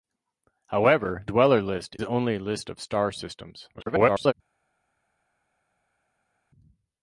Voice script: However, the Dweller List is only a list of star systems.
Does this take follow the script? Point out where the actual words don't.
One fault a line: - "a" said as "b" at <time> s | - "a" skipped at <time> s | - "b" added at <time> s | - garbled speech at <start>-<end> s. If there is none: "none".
- "the" skipped at 1.2 s
- "is" skipped at 2.0 s
- garbled speech at 3.7-4.3 s